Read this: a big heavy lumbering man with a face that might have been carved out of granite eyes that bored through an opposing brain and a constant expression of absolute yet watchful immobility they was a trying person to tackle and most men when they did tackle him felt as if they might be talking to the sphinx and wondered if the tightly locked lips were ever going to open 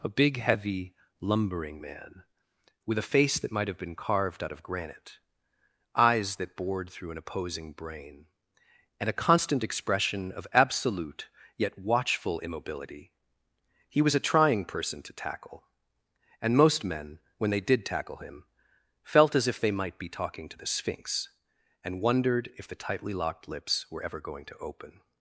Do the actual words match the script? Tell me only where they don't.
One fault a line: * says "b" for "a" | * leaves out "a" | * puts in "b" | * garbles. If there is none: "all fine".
* says "he" for "they"